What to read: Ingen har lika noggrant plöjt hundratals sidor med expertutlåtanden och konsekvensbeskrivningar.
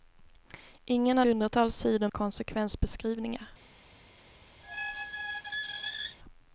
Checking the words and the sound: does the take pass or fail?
fail